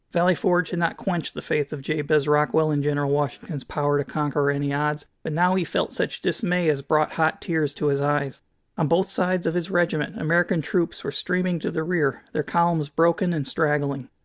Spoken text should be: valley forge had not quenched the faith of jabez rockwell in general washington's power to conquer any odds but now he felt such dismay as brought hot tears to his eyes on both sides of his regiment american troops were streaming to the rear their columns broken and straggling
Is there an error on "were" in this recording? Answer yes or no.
no